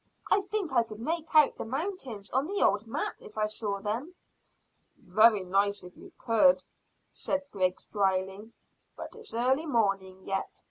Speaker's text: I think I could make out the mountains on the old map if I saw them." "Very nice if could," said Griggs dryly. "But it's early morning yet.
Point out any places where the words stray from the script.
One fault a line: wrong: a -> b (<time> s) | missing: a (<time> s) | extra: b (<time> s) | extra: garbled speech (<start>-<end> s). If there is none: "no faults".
extra: you (6.0 s)